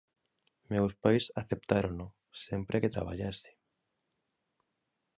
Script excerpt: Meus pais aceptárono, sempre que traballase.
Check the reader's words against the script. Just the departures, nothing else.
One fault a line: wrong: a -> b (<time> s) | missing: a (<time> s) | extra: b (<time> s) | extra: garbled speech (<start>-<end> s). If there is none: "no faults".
no faults